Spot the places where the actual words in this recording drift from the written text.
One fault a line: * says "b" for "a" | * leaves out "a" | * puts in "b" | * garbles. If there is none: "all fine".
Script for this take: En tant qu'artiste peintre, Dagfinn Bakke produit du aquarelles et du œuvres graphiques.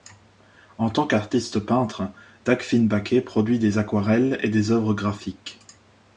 * says "des" for "du"
* says "des" for "du"